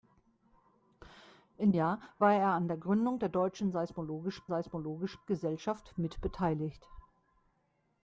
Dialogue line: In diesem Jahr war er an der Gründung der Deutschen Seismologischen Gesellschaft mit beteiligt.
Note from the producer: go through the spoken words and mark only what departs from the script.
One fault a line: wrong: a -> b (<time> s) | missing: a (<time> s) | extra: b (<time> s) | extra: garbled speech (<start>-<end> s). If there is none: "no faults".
missing: diesem (1.7 s)
extra: Seismologischen (4.5 s)